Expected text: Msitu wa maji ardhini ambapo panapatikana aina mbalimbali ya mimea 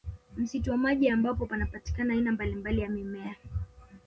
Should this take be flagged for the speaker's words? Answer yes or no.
yes